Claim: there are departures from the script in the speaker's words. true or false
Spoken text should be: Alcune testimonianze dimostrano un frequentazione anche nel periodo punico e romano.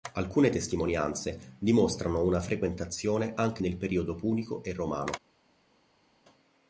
true